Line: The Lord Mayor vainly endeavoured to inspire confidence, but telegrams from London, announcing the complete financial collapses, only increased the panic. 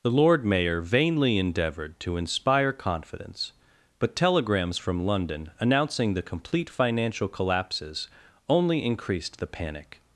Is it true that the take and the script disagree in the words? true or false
false